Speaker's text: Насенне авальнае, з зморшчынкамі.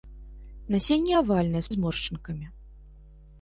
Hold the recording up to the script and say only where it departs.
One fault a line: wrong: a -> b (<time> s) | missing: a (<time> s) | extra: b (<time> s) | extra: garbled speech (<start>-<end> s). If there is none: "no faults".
no faults